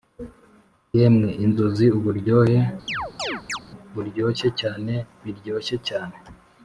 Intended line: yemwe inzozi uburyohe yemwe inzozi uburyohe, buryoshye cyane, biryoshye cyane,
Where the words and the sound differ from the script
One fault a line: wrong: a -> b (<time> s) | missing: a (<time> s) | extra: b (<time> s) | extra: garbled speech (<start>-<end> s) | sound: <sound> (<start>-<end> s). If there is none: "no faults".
missing: yemwe inzozi uburyohe (2.6 s)
sound: chirp (2.9-3.6 s)